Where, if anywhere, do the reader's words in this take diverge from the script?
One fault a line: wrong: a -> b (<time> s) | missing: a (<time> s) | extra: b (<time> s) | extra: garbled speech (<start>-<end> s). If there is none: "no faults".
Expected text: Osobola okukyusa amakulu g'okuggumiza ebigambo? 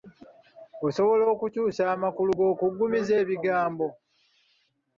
no faults